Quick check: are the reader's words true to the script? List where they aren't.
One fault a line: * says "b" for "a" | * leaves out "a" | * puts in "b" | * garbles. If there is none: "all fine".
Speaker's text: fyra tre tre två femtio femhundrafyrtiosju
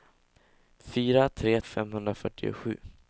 * leaves out "tre två femtio"